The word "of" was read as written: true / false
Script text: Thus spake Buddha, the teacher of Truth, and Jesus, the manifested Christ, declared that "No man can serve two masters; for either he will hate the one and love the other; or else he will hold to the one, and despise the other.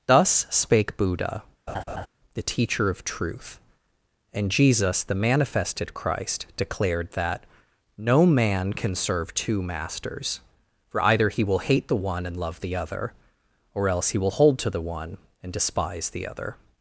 true